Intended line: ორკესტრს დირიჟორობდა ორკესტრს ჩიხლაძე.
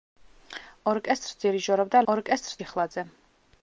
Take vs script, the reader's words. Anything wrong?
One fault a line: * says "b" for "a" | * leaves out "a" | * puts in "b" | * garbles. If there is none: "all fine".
all fine